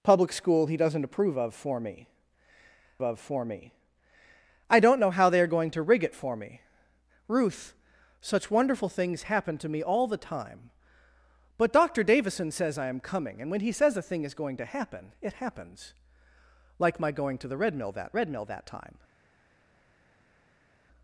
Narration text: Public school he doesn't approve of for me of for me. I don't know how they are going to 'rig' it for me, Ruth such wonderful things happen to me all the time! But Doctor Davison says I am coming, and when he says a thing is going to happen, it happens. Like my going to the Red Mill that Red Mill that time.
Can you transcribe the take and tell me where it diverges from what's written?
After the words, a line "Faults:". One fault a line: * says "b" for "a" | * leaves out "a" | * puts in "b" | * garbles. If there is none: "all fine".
Public school he doesn't approve of for me of for me. I don't know how they are going to 'rig' it for me, Ruth such wonderful things happen to me all the time! But Doctor Davison says I am coming, and when he says a thing is going to happen, it happens. Like my going to the Red Mill that Red Mill that time.
Faults:
all fine